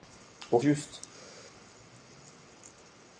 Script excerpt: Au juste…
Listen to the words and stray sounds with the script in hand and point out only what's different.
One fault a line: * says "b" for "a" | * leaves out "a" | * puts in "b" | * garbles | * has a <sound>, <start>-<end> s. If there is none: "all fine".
all fine